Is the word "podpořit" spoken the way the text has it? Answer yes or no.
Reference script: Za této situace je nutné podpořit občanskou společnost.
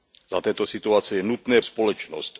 no